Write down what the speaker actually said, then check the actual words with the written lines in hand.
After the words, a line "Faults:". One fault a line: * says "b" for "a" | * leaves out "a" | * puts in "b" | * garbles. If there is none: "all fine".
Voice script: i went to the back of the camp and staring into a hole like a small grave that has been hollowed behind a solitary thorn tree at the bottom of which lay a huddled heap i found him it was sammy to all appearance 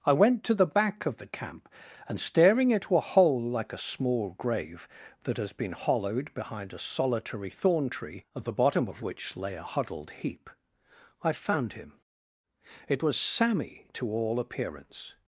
i went to the back of the camp and staring into a hole like a small grave that has been hollowed behind a solitary thorn tree at the bottom of which lay a huddled heap i found him it was sammy to all appearance
Faults:
all fine